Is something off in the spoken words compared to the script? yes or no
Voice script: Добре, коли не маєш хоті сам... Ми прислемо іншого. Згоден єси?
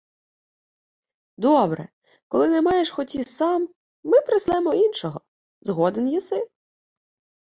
no